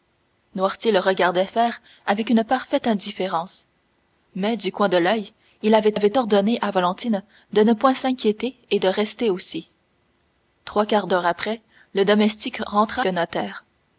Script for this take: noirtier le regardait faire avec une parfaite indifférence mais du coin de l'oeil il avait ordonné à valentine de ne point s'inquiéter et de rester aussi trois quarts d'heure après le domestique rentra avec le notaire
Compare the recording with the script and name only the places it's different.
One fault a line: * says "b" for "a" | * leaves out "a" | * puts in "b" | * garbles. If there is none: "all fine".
* puts in "avait"
* leaves out "avec"